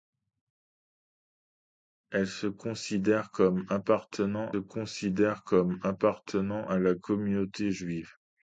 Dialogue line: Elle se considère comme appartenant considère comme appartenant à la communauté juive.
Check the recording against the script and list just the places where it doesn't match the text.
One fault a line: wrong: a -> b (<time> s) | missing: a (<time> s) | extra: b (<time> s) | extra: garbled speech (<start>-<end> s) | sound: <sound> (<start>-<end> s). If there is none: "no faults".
no faults